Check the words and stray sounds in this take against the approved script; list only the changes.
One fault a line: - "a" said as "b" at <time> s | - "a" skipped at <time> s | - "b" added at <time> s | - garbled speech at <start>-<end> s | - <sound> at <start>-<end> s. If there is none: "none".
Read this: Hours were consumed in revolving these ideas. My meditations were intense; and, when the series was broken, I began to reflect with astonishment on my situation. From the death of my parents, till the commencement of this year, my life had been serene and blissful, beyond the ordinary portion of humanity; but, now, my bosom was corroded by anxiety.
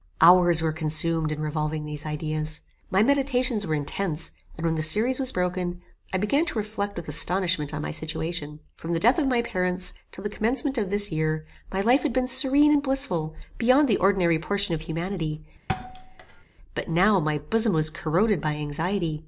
- thud at 15.7-16.4 s